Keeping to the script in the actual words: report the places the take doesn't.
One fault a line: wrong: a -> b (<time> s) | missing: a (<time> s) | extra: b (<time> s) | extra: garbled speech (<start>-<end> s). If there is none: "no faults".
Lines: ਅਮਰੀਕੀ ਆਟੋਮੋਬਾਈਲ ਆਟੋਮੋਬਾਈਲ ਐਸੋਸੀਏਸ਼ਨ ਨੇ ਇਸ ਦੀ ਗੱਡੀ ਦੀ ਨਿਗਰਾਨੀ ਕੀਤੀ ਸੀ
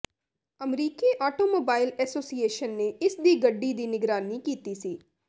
missing: ਆਟੋਮੋਬਾਈਲ (1.9 s)